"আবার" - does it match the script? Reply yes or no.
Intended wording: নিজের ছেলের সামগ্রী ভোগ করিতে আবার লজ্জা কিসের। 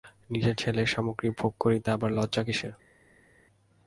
yes